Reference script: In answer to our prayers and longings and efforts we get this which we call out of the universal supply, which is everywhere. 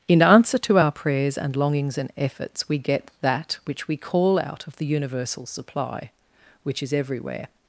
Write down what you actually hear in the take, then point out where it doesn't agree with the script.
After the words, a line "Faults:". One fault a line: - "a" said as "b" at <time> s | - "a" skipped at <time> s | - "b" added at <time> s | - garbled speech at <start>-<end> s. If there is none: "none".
In answer to our prayers and longings and efforts we get that which we call out of the universal supply, which is everywhere.
Faults:
- "this" said as "that" at 3.2 s